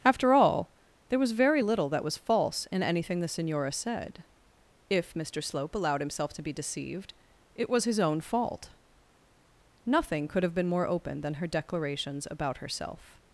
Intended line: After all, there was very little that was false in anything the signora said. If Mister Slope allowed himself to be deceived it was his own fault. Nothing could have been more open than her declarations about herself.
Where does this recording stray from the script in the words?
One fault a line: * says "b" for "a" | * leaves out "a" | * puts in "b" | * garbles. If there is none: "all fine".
all fine